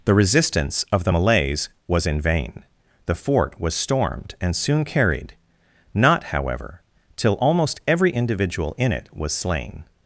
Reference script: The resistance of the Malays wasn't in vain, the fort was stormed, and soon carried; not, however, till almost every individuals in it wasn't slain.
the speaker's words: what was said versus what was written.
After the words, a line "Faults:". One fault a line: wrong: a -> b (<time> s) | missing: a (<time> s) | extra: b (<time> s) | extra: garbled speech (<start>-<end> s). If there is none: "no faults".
The resistance of the Malays was in vain, the fort was stormed, and soon carried; not, however, till almost every individual in it was slain.
Faults:
wrong: wasn't -> was (1.9 s)
wrong: individuals -> individual (8.1 s)
wrong: wasn't -> was (9.1 s)